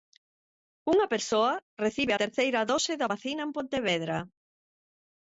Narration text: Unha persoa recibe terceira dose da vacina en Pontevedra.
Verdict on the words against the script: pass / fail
pass